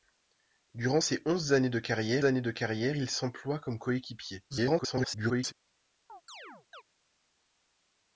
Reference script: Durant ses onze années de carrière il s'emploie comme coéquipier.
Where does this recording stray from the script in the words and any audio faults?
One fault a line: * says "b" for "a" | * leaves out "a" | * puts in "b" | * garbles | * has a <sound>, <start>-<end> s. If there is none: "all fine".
* puts in "années de carrière"
* garbles
* has a chirp, 6.1-6.8 s